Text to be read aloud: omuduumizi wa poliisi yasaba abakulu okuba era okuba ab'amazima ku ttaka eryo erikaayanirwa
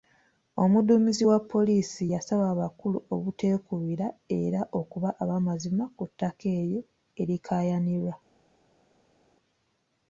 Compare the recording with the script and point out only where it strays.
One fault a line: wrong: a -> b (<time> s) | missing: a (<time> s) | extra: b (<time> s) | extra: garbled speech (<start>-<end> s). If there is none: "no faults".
wrong: okuba -> obuteekubira (3.1 s)